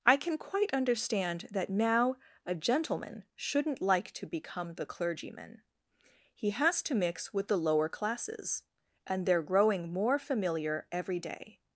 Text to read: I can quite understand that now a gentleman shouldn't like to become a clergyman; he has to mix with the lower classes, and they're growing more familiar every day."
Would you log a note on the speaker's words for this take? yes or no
yes